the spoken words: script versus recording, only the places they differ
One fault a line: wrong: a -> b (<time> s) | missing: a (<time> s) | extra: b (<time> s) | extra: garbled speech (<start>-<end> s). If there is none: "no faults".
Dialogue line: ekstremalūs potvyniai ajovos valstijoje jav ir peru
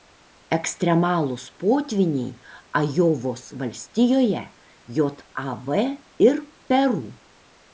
no faults